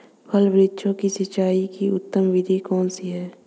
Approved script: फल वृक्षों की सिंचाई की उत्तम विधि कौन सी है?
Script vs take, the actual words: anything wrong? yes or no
no